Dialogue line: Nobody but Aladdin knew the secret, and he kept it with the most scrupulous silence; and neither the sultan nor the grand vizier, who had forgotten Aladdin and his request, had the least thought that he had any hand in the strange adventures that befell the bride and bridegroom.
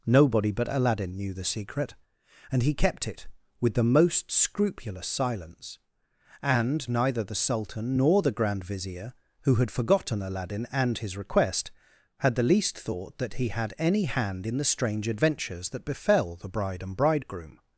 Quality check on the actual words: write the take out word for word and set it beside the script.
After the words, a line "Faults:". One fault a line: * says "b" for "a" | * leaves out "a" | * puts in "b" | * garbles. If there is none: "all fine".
Nobody but Aladdin knew the secret, and he kept it with the most scrupulous silence; and neither the sultan nor the grand vizier, who had forgotten Aladdin and his request, had the least thought that he had any hand in the strange adventures that befell the bride and bridegroom.
Faults:
all fine